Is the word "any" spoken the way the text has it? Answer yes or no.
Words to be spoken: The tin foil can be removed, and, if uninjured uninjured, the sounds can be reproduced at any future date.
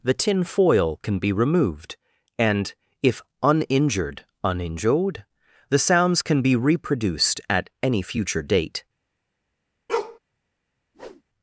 yes